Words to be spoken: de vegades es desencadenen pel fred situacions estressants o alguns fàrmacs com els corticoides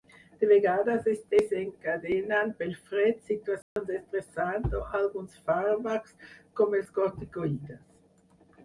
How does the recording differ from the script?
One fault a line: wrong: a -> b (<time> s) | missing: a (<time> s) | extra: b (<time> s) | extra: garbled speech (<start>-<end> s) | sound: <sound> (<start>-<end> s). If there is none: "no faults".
sound: dropout (3.6-3.8 s)